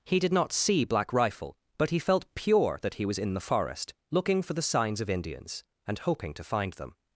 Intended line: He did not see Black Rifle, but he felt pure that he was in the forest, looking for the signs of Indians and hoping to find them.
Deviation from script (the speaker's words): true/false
false